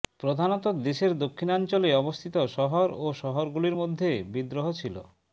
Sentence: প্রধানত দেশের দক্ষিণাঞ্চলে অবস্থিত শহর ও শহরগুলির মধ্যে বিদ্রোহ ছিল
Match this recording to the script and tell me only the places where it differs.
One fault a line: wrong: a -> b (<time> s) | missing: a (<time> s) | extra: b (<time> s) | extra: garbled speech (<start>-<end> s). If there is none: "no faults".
no faults